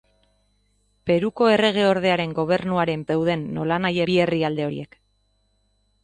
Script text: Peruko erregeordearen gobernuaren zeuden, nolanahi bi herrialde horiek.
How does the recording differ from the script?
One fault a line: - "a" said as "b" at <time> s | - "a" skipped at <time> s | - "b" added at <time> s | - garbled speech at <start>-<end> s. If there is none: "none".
none